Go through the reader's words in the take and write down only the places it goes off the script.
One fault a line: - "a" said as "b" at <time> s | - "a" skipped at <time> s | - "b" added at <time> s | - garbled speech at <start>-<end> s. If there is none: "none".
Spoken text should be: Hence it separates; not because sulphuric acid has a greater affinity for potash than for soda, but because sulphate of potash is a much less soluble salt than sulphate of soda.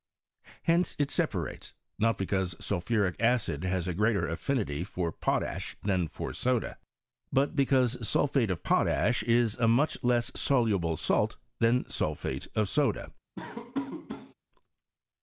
none